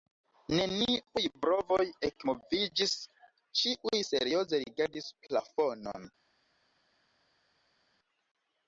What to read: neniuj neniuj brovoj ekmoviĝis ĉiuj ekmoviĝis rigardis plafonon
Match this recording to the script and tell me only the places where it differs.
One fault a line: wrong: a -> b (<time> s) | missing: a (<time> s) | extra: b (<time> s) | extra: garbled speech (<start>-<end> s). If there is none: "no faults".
missing: neniuj (1.2 s)
wrong: ekmoviĝis -> serioze (4.1 s)